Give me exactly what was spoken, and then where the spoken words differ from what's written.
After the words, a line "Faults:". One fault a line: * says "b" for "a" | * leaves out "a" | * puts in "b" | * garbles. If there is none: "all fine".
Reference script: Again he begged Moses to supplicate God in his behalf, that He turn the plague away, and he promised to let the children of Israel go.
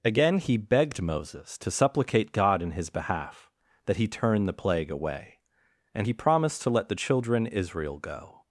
Again he begged Moses to supplicate God in his behalf, that He turn the plague away, and he promised to let the children Israel go.
Faults:
* leaves out "of"